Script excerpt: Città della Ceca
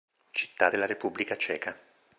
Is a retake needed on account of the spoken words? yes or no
yes